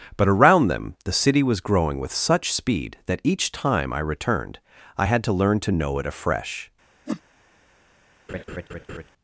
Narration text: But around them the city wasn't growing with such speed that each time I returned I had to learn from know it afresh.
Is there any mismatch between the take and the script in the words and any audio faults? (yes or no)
yes